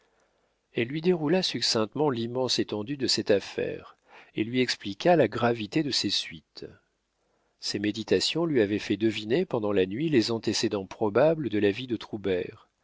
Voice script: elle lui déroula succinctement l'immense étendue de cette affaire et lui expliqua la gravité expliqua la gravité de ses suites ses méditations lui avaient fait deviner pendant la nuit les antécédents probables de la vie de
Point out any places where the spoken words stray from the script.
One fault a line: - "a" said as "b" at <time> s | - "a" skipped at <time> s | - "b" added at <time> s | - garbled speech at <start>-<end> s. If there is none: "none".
- "expliqua la gravité" skipped at 5.8 s